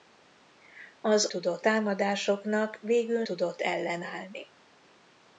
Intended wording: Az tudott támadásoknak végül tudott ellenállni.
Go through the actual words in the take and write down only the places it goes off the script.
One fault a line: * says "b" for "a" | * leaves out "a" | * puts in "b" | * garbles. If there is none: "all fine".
all fine